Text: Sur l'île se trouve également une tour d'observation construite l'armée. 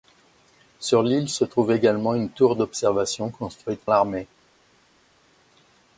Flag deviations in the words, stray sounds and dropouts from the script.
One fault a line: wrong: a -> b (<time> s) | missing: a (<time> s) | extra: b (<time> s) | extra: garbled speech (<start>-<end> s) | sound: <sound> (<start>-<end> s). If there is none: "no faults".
no faults